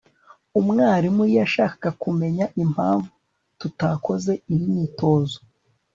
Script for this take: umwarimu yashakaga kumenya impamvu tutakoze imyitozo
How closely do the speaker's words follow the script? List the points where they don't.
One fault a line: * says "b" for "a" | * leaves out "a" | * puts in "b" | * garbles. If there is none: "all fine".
all fine